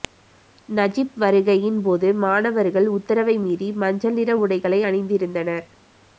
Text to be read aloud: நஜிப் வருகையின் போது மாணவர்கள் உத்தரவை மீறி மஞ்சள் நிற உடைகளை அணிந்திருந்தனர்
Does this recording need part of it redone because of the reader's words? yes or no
no